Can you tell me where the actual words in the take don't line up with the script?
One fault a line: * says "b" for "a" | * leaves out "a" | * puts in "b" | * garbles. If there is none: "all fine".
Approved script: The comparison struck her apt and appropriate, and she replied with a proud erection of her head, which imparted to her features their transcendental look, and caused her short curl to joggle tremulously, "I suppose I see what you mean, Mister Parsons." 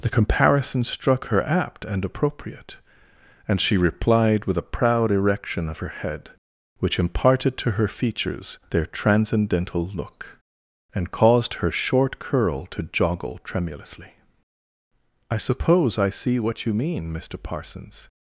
all fine